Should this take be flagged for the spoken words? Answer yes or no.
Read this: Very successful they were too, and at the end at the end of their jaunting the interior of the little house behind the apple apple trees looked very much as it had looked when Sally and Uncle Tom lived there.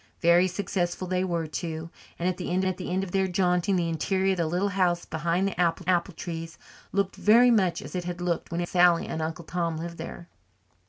no